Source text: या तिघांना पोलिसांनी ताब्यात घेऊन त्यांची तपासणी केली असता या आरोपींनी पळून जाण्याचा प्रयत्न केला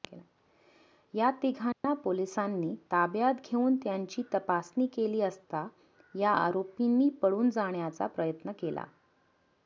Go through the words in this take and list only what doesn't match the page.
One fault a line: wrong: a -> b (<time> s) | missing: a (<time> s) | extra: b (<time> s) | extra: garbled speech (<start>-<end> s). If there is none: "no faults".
no faults